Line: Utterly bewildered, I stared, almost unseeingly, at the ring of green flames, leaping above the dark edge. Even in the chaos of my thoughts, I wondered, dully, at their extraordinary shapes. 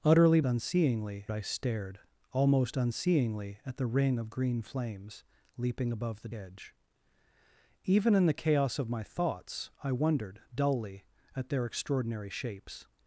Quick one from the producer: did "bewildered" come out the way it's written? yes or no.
no